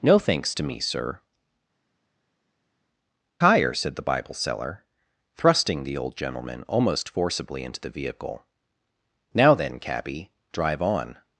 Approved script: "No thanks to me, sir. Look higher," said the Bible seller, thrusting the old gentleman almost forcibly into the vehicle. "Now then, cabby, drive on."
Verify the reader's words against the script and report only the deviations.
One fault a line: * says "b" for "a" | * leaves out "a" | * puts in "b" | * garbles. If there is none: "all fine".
* leaves out "Look"